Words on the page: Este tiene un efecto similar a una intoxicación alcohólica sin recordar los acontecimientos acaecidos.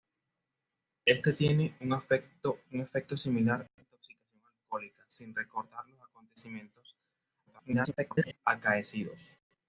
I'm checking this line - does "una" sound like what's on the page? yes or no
no